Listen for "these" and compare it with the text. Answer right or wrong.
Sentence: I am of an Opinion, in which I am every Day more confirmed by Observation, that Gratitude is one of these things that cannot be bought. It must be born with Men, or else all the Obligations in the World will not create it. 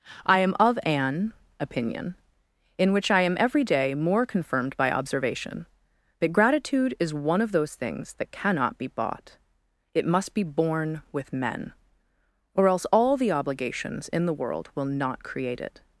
wrong